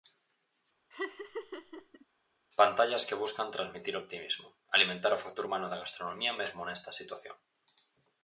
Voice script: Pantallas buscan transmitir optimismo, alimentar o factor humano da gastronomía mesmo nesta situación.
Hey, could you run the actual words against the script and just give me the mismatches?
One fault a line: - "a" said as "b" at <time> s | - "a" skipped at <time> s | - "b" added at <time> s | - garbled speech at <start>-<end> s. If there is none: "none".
- "que" added at 3.1 s